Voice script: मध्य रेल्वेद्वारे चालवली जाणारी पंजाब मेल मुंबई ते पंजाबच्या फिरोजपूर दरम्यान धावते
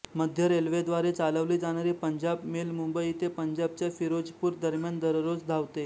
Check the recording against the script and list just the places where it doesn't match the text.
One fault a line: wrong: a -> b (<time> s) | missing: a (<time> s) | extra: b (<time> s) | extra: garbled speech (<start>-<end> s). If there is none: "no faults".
extra: दररोज (5.0 s)